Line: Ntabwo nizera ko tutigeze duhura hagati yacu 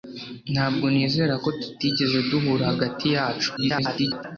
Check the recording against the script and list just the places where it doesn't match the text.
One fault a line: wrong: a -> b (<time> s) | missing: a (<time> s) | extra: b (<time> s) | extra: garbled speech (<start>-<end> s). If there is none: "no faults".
extra: garbled speech (3.6-4.2 s)